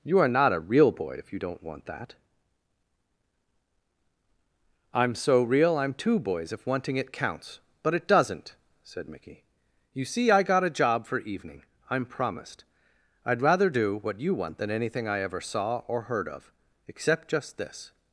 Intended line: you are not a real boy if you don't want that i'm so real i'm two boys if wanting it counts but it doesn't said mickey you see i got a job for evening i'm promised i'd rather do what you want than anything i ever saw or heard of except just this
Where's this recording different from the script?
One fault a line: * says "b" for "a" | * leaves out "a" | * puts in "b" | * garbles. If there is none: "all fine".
all fine